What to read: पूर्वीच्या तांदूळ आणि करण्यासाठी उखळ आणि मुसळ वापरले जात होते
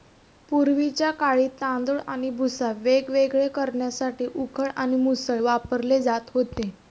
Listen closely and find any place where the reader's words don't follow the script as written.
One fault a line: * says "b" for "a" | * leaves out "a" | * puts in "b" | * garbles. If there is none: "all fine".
* puts in "काळी"
* puts in "भुसा वेगवेगळे"